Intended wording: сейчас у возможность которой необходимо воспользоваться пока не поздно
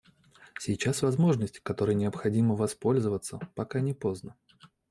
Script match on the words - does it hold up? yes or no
yes